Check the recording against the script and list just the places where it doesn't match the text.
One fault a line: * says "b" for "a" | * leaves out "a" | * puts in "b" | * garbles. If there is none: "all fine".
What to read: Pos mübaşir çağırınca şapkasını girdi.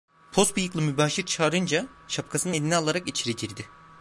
* puts in "bıyıklı"
* puts in "eline alarak içeri"